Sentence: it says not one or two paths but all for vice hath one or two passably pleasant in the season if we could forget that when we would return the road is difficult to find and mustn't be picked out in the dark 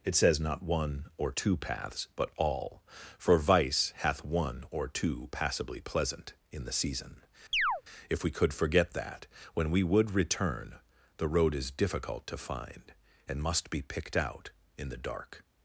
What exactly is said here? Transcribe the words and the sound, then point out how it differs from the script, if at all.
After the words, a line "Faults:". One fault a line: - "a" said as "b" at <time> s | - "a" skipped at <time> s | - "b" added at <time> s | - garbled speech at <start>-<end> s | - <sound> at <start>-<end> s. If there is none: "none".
it says not one or two paths but all for vice hath one or two passably pleasant in the season if we could forget that when we would return the road is difficult to find and must be picked out in the dark
Faults:
- chirp at 7.5-7.8 s
- "mustn't" said as "must" at 13.4 s